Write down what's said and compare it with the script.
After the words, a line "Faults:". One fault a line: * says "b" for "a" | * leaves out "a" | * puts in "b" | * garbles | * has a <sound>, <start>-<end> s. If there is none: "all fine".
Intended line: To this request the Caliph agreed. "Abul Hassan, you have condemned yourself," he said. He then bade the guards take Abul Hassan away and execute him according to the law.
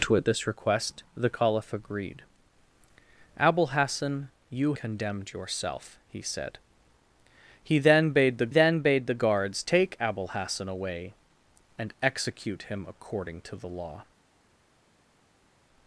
To this request the Caliph agreed. "Abul Hassan, you condemned yourself," he said. He then bade the then bade the guards take Abul Hassan away and execute him according to the law.
Faults:
* leaves out "have"
* puts in "then bade the"